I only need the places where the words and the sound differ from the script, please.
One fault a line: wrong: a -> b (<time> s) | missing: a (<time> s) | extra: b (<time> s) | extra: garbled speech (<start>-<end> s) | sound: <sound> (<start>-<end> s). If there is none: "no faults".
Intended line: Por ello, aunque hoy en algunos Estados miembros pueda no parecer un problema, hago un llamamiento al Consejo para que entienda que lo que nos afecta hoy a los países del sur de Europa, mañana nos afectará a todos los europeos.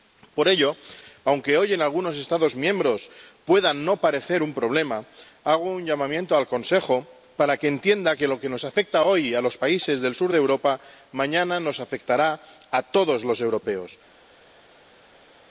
no faults